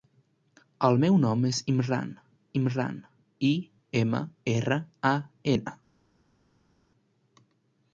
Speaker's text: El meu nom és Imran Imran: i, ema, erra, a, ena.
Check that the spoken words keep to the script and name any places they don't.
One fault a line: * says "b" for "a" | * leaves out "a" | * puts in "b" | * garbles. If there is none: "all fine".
all fine